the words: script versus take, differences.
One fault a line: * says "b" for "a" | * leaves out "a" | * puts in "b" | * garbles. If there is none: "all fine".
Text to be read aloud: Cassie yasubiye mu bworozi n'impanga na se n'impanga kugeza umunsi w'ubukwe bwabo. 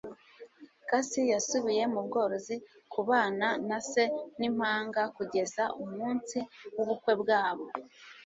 * says "kubana" for "n'impanga"